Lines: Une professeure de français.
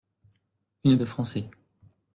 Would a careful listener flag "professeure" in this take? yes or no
yes